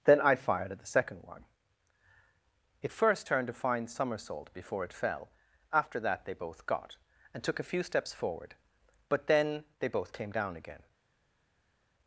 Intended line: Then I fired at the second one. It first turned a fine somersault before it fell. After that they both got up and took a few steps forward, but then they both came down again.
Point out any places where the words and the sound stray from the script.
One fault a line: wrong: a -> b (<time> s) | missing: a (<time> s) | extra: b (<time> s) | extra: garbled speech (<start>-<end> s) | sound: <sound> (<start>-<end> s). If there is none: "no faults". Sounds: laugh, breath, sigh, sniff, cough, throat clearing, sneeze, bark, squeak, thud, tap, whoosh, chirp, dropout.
missing: up (7.0 s)